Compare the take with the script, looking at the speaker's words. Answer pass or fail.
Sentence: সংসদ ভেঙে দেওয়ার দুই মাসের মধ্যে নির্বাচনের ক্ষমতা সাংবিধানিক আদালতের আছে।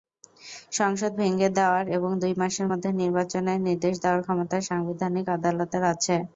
fail